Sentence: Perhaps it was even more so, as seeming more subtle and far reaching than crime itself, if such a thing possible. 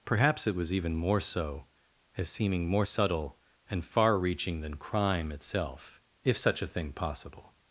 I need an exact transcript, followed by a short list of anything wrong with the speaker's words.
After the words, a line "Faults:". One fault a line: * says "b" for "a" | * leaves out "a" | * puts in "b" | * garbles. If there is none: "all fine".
Perhaps it was even more so, as seeming more subtle and far reaching than crime itself, if such a thing possible.
Faults:
all fine